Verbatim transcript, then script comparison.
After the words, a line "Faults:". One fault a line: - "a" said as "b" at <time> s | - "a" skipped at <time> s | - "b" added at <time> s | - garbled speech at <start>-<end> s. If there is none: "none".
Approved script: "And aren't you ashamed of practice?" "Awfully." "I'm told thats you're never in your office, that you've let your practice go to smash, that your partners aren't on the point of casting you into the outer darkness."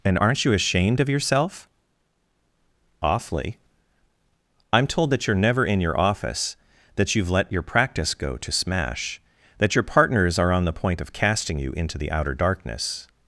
"And aren't you ashamed of yourself?" "Awfully." "I'm told that you're never in your office, that you've let your practice go to smash, that your partners are on the point of casting you into the outer darkness."
Faults:
- "practice" said as "yourself" at 1.1 s
- "thats" said as "that" at 5.1 s
- "aren't" said as "are" at 10.4 s